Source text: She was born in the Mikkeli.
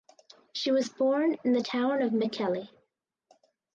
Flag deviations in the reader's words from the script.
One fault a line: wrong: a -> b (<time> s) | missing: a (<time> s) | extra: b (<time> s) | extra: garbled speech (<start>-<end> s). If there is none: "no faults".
extra: town of (1.6 s)